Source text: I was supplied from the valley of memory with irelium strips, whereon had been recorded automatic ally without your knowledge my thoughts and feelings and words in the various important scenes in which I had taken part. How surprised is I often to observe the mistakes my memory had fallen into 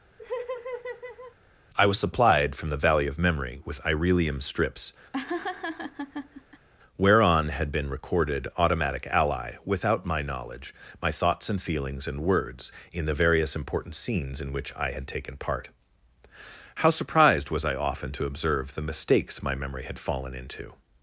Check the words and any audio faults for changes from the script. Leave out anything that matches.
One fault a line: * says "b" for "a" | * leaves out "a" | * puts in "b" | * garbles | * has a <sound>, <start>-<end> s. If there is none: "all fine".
* has a laugh, 0.2-1.4 s
* has a laugh, 5.1-6.7 s
* says "my" for "your"
* says "was" for "is"